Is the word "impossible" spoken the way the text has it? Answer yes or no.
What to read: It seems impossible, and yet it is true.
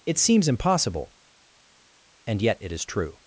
yes